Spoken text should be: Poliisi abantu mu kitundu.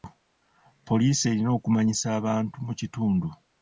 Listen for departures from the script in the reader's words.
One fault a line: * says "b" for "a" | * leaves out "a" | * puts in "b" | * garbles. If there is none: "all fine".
* puts in "erina okumanyisa"